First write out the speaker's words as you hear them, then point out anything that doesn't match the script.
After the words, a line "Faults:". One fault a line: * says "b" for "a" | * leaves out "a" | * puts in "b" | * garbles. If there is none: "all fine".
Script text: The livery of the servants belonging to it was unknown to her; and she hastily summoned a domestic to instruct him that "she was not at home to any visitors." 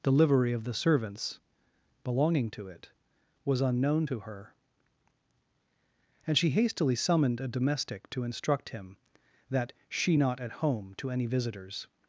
The livery of the servants belonging to it was unknown to her; and she hastily summoned a domestic to instruct him that "she not at home to any visitors."
Faults:
* leaves out "was"